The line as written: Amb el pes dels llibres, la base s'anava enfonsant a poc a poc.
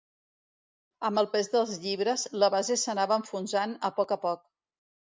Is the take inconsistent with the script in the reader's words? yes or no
no